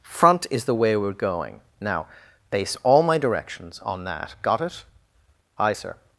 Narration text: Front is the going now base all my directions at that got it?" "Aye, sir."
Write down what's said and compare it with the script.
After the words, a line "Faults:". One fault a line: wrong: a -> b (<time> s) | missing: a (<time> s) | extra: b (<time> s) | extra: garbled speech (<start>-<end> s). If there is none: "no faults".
Front is the way we're going now base all my directions on that got it?" "Aye, sir."
Faults:
extra: way we're (0.8 s)
wrong: at -> on (3.9 s)